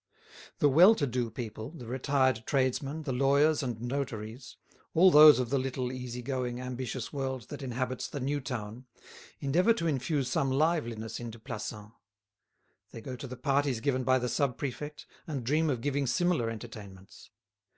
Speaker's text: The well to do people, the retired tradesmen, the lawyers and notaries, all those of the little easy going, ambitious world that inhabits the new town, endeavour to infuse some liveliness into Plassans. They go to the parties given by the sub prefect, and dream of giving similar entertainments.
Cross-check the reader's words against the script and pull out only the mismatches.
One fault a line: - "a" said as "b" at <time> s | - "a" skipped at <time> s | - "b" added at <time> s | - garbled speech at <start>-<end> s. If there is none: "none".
none